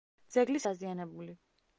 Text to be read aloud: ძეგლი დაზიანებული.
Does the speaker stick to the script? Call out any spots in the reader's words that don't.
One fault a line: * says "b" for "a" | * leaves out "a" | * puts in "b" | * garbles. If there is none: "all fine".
all fine